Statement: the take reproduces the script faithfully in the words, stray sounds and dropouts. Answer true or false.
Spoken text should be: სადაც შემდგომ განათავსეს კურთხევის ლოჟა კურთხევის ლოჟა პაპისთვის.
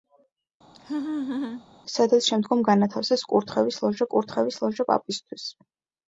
false